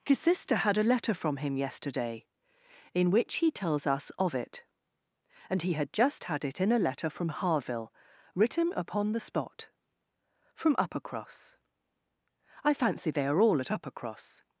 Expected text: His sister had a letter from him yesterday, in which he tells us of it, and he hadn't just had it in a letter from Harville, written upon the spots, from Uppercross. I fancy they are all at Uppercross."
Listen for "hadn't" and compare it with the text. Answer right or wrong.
wrong